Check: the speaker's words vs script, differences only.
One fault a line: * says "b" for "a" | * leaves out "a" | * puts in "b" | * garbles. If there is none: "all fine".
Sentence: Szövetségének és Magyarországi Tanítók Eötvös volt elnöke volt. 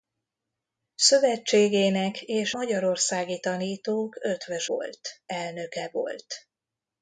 all fine